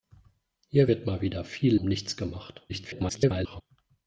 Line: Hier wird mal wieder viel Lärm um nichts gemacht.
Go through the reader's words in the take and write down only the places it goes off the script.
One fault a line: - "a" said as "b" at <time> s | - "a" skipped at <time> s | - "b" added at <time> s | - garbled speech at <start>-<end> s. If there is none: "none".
- "Lärm" skipped at 1.7 s
- garbled speech at 2.7-3.6 s